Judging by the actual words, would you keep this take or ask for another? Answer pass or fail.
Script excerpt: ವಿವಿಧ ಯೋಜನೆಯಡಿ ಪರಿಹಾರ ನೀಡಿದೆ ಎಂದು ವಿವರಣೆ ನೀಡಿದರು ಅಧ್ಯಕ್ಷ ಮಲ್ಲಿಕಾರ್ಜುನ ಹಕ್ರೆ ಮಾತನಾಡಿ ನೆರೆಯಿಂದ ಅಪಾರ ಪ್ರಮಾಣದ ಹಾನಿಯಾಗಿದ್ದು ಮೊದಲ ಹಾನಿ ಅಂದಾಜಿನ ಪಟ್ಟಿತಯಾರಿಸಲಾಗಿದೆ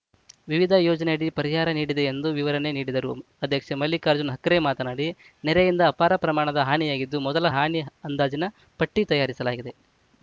pass